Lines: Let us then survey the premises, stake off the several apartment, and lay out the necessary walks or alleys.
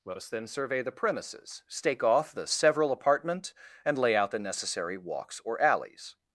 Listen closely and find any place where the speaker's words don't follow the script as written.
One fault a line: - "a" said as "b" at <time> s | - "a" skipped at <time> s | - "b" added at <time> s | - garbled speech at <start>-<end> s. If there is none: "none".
none